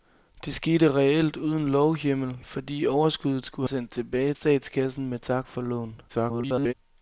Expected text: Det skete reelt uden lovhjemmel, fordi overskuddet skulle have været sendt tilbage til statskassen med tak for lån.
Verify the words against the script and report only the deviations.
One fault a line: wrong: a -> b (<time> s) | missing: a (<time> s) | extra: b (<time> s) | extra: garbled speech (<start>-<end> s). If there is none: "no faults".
missing: have været (3.7 s)
missing: til (4.3 s)
extra: garbled speech (6.1-6.7 s)